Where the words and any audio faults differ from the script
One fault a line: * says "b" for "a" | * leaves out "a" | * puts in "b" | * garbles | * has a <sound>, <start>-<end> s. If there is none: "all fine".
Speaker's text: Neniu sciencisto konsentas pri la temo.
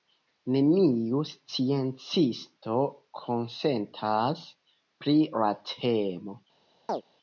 * has a chirp, 6.9-7.0 s